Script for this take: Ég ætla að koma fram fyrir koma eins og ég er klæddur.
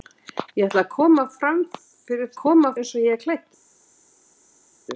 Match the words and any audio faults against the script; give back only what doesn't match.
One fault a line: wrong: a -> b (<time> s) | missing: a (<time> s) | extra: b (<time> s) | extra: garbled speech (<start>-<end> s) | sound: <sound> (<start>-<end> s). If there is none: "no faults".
no faults